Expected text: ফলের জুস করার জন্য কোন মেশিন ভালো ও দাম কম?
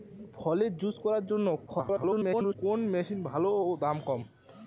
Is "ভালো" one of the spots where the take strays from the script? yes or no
no